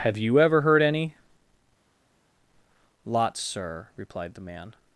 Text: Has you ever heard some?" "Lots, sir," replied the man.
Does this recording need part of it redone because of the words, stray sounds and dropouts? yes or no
yes